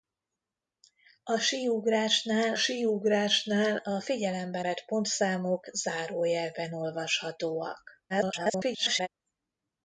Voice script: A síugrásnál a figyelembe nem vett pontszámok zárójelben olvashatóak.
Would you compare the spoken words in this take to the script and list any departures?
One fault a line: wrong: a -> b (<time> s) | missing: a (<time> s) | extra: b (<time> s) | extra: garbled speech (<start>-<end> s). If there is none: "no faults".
extra: síugrásnál (2.5 s)
missing: nem (4.6 s)
extra: garbled speech (8.1-9.1 s)